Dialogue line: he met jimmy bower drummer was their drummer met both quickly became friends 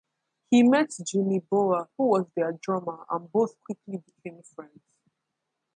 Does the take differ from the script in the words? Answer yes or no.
yes